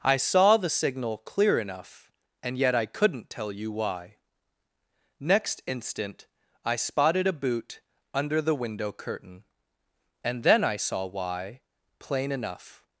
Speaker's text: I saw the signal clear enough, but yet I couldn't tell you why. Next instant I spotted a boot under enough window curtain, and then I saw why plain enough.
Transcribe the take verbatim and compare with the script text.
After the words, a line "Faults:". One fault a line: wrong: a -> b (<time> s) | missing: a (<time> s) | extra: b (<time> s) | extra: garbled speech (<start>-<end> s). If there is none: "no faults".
I saw the signal clear enough, and yet I couldn't tell you why. Next instant I spotted a boot under the window curtain, and then I saw why plain enough.
Faults:
wrong: but -> and (2.4 s)
wrong: enough -> the (8.4 s)